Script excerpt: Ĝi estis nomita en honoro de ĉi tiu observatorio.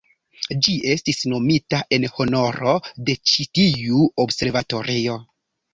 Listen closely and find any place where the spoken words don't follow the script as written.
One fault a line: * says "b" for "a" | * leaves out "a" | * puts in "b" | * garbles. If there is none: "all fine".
all fine